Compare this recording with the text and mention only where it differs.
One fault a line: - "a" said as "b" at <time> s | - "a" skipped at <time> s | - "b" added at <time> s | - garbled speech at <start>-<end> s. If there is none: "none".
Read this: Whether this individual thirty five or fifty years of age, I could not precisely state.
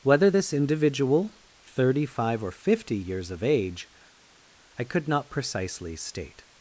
none